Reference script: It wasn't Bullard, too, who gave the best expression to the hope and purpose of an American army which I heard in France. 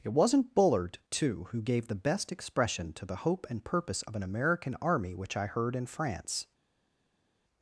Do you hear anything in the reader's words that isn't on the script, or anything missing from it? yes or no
no